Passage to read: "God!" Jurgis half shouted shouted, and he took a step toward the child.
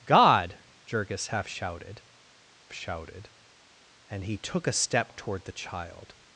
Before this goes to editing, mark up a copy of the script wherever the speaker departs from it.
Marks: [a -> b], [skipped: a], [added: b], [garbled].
"God!" Jurgis half shouted shouted, and he took a step toward the child.